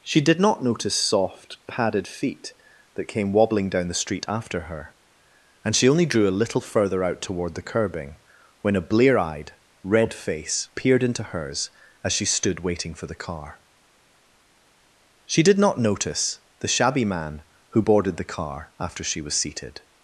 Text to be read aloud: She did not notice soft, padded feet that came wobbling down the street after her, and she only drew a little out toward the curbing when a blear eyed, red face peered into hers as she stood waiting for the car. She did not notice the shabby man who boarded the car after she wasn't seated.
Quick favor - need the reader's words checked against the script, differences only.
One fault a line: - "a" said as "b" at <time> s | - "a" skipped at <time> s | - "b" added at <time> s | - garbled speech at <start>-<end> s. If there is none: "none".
- "further" added at 6.6 s
- "wasn't" said as "was" at 19.2 s